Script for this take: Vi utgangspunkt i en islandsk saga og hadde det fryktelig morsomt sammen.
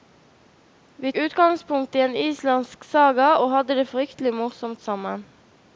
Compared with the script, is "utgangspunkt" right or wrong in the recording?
right